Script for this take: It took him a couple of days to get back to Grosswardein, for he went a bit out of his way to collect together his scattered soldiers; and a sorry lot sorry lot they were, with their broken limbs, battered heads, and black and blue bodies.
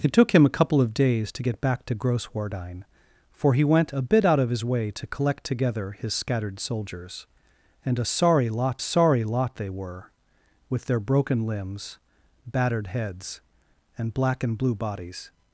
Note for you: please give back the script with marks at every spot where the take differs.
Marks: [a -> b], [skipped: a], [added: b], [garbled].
It took him a couple of days to get back to Grosswardein, for he went a bit out of his way to collect together his scattered soldiers; and a sorry lot sorry lot they were, with their broken limbs, battered heads, and black and blue bodies.